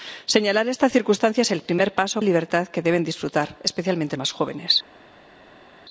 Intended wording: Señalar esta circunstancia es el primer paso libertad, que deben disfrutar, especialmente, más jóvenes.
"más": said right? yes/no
yes